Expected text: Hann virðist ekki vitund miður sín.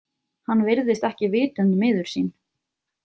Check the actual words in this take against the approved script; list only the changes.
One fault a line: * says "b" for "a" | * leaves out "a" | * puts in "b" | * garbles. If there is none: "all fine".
all fine